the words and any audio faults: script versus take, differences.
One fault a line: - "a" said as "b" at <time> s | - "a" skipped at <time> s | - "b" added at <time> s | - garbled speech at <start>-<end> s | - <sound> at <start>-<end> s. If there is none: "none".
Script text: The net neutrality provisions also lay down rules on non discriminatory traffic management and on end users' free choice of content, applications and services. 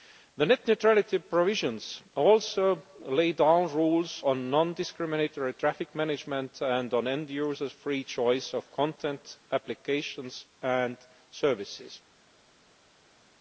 none